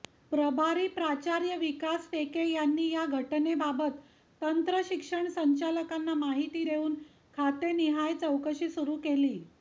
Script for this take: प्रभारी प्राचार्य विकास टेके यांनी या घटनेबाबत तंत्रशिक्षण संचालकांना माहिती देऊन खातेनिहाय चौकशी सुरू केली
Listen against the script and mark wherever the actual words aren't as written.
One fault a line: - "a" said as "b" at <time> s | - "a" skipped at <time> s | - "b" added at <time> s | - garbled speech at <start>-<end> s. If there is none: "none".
none